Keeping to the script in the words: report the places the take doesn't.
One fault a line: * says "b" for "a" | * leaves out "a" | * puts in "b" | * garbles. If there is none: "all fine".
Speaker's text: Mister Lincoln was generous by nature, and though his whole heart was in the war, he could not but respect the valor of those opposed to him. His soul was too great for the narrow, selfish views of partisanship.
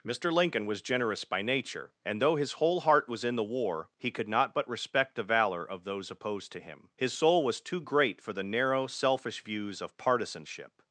all fine